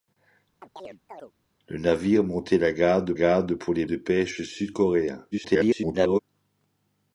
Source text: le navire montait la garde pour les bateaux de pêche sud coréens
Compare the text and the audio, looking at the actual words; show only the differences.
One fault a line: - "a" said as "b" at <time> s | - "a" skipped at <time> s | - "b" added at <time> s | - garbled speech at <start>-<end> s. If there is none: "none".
- "garde" added at 3.1 s
- "bateaux" skipped at 3.9 s
- garbled speech at 5.3-6.2 s